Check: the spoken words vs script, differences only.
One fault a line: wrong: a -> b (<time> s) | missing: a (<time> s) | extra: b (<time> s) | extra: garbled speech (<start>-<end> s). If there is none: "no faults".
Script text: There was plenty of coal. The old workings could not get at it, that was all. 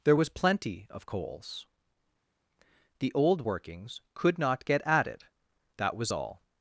wrong: coal -> coals (1.0 s)